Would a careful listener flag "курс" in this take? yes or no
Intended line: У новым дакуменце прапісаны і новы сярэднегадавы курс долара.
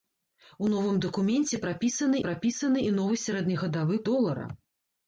yes